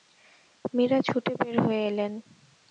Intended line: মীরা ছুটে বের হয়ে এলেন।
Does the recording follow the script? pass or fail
pass